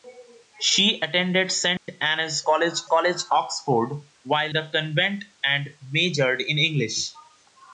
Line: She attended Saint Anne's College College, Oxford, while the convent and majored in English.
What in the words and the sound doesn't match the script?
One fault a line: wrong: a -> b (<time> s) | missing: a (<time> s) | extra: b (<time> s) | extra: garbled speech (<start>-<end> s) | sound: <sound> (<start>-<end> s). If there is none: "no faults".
sound: dropout (1.8-1.9 s)